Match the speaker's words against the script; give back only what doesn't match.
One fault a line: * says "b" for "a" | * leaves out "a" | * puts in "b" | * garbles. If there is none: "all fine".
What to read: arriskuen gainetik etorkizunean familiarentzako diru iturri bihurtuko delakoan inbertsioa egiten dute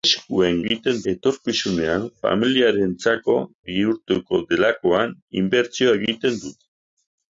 * says "egiten" for "gainetik"
* leaves out "diru iturri"